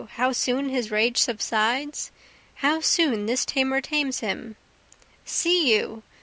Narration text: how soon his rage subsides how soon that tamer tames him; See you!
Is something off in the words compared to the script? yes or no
yes